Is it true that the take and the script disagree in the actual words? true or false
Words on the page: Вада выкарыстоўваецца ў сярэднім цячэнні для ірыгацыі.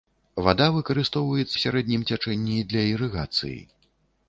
true